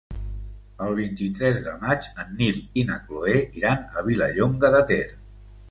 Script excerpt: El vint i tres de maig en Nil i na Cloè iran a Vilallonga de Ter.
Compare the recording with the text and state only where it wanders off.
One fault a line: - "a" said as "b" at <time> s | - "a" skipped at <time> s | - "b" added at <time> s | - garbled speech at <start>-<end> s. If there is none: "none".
none